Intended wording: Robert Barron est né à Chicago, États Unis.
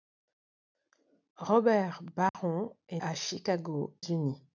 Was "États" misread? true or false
true